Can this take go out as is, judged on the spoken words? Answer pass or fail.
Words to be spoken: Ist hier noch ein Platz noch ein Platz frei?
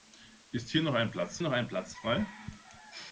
pass